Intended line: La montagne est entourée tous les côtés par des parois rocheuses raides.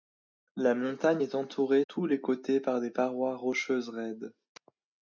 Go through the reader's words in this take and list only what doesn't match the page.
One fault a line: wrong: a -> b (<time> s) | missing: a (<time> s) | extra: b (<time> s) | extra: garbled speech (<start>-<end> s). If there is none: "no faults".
no faults